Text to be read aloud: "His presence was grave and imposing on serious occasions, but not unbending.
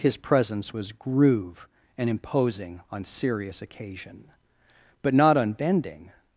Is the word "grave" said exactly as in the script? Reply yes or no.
no